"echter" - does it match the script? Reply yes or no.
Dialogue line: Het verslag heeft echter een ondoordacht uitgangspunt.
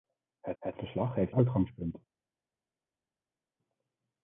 no